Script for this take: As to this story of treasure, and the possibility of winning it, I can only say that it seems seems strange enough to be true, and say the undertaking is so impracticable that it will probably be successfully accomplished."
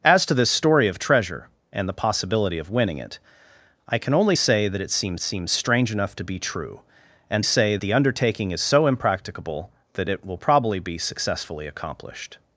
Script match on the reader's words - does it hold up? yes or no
yes